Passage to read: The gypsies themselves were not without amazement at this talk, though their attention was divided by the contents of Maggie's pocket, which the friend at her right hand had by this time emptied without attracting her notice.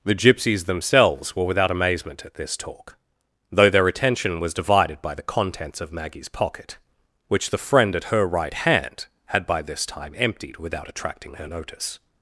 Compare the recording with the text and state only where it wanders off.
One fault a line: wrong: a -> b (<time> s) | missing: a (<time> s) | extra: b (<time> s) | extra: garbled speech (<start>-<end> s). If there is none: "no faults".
missing: not (1.4 s)